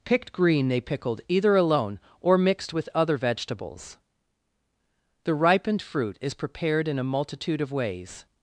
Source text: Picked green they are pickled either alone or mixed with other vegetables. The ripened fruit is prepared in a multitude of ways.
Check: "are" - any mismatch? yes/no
yes